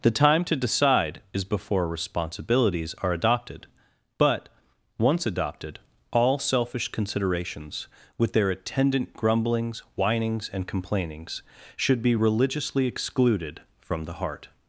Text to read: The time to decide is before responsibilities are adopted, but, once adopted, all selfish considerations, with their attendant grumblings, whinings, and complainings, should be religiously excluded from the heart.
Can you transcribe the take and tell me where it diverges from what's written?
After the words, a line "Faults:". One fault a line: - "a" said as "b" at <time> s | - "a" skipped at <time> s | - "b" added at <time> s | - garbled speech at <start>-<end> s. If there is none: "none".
The time to decide is before responsibilities are adopted, but, once adopted, all selfish considerations, with their attendant grumblings, whinings, and complainings, should be religiously excluded from the heart.
Faults:
none